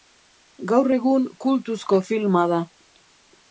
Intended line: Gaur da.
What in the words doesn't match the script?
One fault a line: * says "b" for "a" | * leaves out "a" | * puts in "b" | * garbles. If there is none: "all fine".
* puts in "egun kultuzko filma"